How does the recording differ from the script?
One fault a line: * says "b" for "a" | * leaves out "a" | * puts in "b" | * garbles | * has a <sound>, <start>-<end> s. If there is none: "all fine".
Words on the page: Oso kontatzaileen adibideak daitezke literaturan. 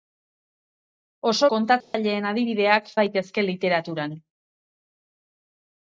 * has a dropout, 1.8-1.9 s